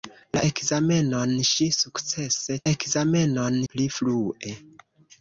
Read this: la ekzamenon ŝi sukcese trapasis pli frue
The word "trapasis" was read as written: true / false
false